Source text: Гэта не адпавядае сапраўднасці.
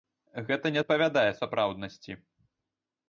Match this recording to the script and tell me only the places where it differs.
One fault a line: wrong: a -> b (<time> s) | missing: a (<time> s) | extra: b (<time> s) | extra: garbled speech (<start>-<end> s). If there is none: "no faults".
no faults